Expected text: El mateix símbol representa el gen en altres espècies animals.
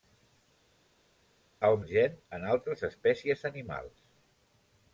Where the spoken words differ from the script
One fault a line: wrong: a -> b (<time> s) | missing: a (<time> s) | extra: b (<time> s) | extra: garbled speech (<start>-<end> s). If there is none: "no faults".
missing: mateix símbol representa (1.8 s)